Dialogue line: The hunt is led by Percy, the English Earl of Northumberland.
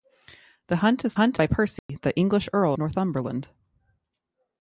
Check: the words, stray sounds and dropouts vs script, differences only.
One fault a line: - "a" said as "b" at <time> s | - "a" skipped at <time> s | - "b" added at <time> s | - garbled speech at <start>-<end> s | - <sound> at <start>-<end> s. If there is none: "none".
- "led" said as "hunt" at 1.1 s
- dropout at 1.8-1.9 s
- "of" skipped at 2.8 s